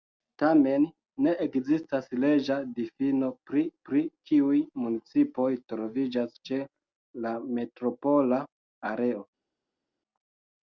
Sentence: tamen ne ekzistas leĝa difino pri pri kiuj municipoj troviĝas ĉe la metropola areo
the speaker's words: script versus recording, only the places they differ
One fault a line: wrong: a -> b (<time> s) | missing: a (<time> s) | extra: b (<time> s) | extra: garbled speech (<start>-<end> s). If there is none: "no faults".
no faults